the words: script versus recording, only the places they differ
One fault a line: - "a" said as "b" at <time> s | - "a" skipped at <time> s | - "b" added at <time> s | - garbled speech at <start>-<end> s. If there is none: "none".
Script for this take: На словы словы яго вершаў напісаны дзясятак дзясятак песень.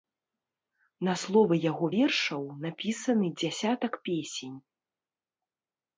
- "словы" skipped at 1.6 s
- "дзясятак" skipped at 3.9 s